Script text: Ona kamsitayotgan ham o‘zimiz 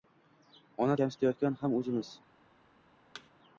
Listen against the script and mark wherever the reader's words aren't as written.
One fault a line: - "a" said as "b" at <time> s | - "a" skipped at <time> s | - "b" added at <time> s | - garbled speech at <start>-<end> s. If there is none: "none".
none